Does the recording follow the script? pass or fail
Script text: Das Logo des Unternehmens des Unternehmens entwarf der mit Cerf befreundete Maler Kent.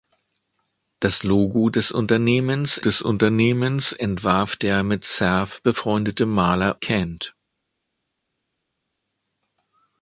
pass